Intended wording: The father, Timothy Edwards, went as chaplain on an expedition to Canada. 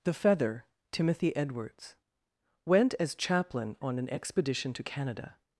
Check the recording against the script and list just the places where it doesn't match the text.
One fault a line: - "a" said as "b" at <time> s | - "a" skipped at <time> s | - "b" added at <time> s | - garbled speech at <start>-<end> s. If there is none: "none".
- "father" said as "feather" at 0.1 s